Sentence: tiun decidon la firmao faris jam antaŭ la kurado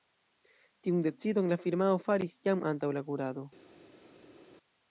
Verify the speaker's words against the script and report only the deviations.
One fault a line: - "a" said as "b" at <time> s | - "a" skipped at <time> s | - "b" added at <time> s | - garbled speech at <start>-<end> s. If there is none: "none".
none